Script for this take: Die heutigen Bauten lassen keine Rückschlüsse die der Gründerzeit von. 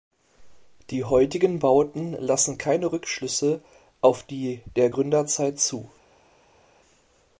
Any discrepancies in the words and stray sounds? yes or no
yes